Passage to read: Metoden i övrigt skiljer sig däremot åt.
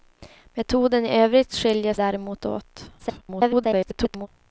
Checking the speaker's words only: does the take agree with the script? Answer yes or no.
no